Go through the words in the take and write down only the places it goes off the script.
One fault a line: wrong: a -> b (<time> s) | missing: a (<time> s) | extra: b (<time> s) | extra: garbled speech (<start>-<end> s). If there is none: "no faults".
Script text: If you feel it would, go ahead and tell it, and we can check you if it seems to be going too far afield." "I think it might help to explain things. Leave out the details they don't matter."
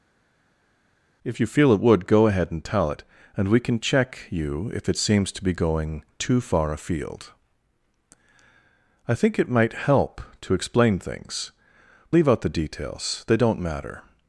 no faults